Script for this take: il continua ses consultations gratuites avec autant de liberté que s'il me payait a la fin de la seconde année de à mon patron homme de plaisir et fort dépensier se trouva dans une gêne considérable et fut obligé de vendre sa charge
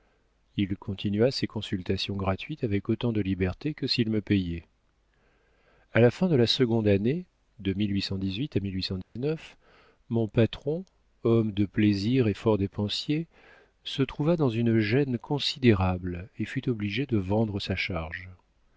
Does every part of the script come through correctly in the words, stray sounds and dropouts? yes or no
no